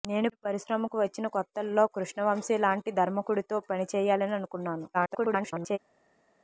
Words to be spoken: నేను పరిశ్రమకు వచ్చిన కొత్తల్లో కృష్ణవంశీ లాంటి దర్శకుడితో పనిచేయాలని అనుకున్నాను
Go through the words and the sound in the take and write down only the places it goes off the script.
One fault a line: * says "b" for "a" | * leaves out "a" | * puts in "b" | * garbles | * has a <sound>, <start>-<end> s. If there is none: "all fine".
* garbles